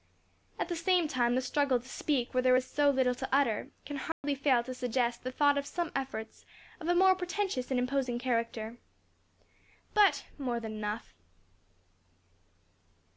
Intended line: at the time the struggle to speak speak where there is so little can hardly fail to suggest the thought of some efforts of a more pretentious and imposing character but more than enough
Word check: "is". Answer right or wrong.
right